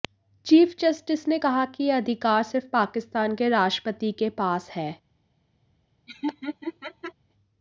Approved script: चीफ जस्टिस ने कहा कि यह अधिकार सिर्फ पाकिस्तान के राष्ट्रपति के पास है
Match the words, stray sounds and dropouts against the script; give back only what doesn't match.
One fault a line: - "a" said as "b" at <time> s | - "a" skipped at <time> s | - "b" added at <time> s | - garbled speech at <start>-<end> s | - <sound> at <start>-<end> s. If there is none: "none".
- laugh at 6.1-7.1 s